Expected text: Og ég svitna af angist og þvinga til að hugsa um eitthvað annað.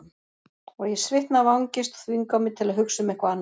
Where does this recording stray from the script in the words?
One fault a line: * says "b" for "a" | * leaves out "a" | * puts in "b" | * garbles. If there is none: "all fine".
* puts in "mig"